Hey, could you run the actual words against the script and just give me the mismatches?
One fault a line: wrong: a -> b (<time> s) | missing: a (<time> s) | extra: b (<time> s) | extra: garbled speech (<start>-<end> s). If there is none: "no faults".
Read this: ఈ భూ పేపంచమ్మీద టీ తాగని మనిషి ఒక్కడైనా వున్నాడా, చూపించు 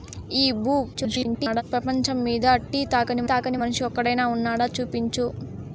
extra: garbled speech (0.9-1.6 s)
extra: తాగని (3.3 s)